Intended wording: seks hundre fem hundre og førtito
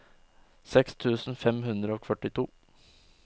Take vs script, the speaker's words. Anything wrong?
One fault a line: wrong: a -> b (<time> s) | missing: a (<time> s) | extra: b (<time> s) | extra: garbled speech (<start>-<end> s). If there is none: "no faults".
wrong: hundre -> tusen (1.0 s)